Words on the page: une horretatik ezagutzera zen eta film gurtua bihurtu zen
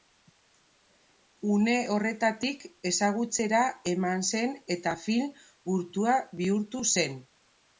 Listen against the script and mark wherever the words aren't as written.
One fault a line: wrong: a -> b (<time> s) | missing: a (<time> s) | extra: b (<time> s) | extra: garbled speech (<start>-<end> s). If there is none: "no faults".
extra: eman (3.9 s)